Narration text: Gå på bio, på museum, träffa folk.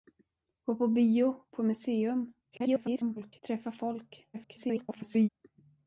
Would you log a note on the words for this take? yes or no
yes